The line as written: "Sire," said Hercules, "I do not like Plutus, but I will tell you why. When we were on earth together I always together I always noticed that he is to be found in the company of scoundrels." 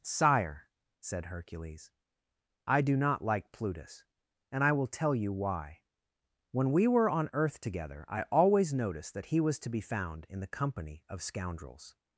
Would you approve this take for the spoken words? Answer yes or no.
no